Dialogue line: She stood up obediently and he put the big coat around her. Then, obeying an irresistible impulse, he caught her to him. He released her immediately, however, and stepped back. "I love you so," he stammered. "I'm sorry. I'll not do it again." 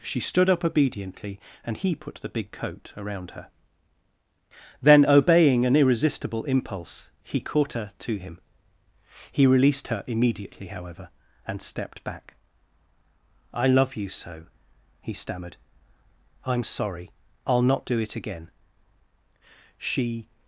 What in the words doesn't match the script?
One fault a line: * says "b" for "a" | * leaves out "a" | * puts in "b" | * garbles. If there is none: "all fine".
* puts in "She"